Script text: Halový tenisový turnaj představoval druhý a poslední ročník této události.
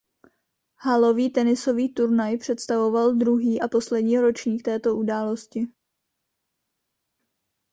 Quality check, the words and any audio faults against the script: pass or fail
pass